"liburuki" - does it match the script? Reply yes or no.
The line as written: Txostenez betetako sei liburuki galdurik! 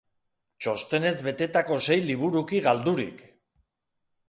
yes